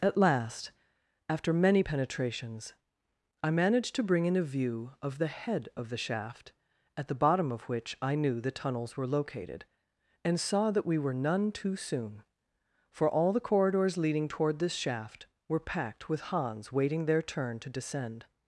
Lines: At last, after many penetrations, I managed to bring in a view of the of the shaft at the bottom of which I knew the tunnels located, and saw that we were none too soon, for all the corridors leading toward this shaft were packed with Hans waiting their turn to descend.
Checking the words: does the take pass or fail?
fail